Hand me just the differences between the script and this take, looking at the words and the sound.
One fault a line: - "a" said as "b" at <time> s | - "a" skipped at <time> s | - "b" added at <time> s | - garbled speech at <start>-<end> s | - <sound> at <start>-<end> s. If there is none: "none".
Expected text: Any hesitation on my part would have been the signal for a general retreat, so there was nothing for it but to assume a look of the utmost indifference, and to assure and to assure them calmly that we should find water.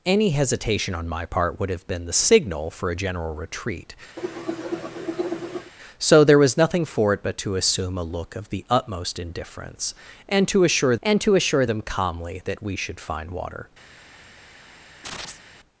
- cough at 4.2-5.7 s
- chirp at 15.0-15.4 s